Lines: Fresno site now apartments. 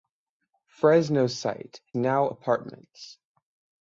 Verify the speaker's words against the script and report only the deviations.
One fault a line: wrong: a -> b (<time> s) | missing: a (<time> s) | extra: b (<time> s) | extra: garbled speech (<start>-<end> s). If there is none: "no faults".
no faults